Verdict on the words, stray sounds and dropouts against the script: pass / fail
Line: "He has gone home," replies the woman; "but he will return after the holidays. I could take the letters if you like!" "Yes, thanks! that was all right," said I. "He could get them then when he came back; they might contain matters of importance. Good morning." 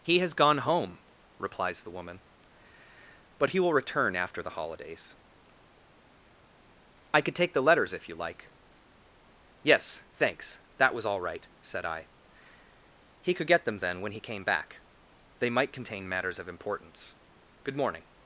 pass